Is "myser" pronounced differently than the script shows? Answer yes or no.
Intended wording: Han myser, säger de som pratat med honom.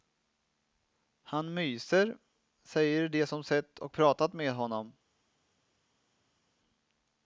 no